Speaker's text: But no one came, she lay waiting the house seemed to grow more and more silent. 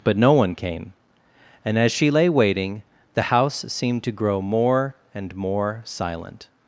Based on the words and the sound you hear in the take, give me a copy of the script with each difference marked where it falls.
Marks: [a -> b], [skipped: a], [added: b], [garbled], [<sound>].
But no one came, [added: and as] she lay waiting the house seemed to grow more and more silent.